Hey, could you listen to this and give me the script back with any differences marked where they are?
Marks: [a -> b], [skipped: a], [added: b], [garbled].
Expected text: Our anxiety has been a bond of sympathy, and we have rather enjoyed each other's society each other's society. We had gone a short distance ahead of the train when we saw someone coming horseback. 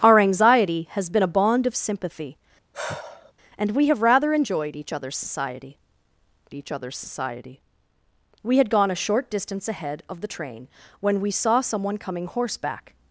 Our anxiety has been a bond of sympathy, and we have rather enjoyed each other's society each other's society. We had gone a short distance ahead of the train when we saw someone coming horseback.